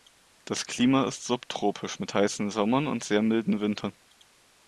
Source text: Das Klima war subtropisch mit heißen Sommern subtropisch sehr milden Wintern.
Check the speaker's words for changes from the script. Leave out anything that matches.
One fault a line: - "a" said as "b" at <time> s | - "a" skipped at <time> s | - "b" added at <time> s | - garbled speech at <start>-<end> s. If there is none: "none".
- "war" said as "ist" at 1.1 s
- "subtropisch" said as "und" at 2.9 s